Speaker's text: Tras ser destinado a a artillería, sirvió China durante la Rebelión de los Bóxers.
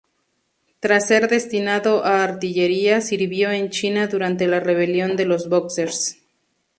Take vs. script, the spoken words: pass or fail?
fail